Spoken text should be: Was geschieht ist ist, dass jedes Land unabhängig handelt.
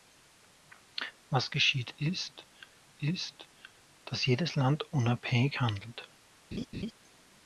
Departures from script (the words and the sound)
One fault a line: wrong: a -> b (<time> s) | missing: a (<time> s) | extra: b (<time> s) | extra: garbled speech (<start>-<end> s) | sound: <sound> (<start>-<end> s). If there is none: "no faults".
sound: laugh (6.5-6.9 s)